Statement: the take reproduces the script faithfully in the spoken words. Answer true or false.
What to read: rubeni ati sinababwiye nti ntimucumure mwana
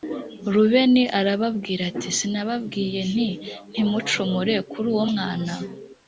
false